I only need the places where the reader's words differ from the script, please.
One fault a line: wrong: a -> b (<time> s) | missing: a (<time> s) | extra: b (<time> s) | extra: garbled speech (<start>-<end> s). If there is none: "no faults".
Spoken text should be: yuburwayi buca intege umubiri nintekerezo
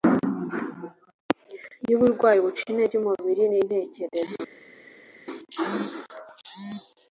no faults